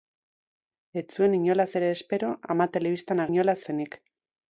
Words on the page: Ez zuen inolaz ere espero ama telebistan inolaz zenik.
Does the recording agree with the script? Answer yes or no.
yes